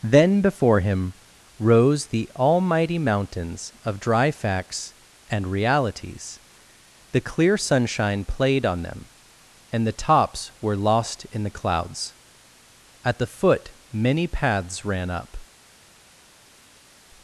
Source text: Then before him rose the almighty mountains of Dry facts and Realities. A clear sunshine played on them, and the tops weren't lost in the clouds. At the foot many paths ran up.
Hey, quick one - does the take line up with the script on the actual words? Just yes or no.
no